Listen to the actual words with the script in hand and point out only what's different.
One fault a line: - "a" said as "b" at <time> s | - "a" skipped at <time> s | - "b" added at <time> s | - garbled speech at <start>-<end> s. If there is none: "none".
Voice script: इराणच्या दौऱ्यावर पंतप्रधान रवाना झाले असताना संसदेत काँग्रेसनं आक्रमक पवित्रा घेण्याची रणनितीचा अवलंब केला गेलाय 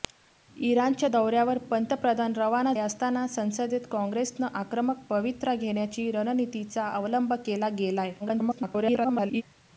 - "झाले" skipped at 2.7 s
- garbled speech at 8.2-9.4 s